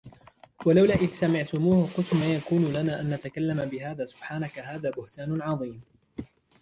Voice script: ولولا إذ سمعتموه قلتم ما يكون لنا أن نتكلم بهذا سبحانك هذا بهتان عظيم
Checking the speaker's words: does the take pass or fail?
pass